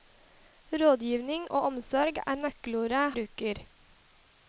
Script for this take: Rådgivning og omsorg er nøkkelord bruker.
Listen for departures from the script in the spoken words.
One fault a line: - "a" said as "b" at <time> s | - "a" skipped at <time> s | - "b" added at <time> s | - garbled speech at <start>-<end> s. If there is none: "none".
none